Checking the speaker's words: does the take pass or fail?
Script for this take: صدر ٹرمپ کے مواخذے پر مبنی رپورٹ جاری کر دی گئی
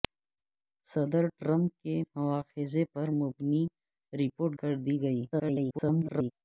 fail